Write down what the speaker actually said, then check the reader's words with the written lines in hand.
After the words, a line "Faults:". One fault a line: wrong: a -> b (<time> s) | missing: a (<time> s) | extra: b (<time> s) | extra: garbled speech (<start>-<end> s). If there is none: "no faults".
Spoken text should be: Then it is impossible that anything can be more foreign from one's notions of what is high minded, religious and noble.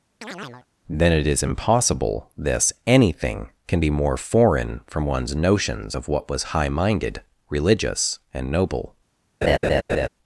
Then it is impossible this anything can be more foreign from one's notions of what was high minded, religious and noble.
Faults:
wrong: that -> this (2.4 s)
wrong: is -> was (6.3 s)